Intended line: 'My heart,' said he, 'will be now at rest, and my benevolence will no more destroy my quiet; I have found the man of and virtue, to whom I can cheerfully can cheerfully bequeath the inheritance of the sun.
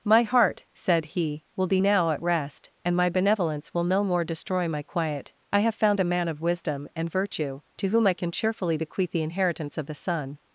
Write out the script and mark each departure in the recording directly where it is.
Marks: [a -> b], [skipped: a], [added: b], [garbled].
'My heart,' said he, 'will be now at rest, and my benevolence will no more destroy my quiet; I have found [the -> a] man of [added: wisdom] and virtue, to whom I can cheerfully [skipped: can cheerfully] bequeath the inheritance of the sun.